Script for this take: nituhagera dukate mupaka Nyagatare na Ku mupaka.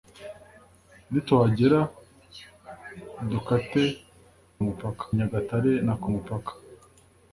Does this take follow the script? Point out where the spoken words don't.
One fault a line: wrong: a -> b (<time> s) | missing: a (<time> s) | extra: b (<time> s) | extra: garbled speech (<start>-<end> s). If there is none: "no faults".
no faults